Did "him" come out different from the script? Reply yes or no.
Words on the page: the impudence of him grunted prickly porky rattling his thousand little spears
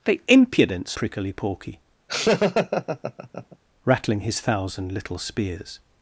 yes